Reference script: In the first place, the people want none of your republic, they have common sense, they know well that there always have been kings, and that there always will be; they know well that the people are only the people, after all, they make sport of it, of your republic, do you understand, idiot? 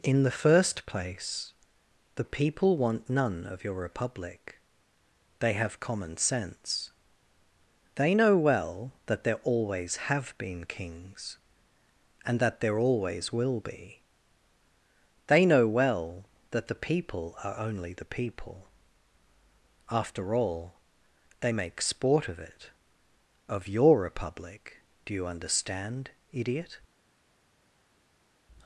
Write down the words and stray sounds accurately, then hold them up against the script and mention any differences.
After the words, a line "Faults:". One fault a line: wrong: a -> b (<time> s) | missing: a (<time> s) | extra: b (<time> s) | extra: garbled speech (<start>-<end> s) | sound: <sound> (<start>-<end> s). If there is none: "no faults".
In the first place, the people want none of your republic, they have common sense, they know well that there always have been kings, and that there always will be; they know well that the people are only the people, after all, they make sport of it, of your republic, do you understand, idiot?
Faults:
no faults